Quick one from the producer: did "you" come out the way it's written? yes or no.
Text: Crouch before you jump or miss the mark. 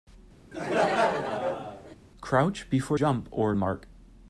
no